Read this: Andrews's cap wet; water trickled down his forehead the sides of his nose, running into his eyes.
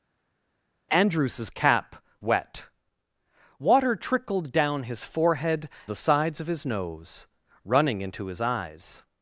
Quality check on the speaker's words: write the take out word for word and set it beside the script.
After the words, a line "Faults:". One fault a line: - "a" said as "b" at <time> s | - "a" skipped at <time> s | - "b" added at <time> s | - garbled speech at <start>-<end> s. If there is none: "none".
Andrews's cap wet; water trickled down his forehead the sides of his nose, running into his eyes.
Faults:
none